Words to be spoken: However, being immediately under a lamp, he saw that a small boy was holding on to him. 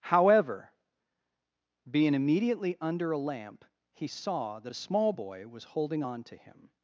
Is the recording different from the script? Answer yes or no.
no